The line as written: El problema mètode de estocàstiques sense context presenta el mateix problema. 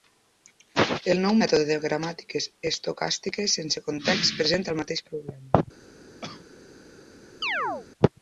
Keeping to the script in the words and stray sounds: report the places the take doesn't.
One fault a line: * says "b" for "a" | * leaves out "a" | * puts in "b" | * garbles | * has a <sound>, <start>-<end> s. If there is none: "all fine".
* says "nou" for "problema"
* puts in "gramàtiques"
* has a cough, 6.2-6.5 s
* has a chirp, 7.4-7.9 s